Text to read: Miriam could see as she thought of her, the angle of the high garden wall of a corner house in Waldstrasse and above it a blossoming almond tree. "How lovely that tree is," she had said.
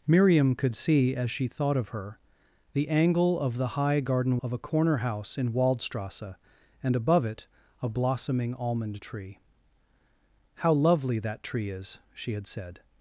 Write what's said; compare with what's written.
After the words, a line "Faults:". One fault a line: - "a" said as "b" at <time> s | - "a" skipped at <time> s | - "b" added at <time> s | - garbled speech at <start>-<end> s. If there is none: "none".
Miriam could see as she thought of her, the angle of the high garden of a corner house in Waldstrasse and above it a blossoming almond tree. "How lovely that tree is," she had said.
Faults:
- "wall" skipped at 4.4 s